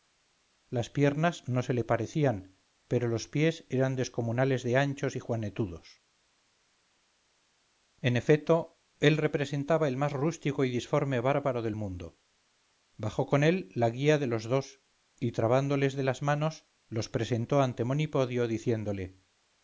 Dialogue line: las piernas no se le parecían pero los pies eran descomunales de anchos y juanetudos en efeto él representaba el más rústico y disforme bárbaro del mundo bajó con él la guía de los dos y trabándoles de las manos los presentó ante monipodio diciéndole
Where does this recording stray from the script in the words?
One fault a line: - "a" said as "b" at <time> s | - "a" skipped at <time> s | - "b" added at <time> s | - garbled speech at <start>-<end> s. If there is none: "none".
none